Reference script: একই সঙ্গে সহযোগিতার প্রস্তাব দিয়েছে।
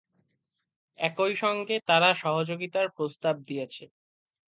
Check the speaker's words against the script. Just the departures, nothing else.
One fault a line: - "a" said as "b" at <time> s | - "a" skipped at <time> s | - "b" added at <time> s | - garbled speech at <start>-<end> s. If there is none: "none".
- "তারা" added at 1.9 s